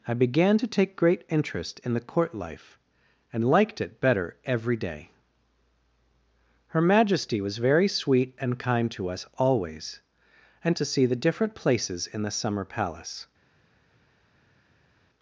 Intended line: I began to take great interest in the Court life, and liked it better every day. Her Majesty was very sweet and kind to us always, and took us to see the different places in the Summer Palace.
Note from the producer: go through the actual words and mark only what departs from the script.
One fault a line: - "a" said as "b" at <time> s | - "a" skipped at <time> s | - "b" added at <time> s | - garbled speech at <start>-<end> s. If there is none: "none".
- "took us" skipped at 10.8 s